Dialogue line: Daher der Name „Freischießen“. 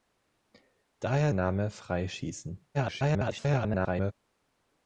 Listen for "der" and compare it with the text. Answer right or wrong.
wrong